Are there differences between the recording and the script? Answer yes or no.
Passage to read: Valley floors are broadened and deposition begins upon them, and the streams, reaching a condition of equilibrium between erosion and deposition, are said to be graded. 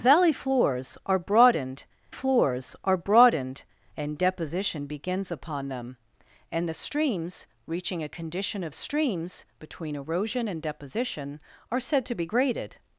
yes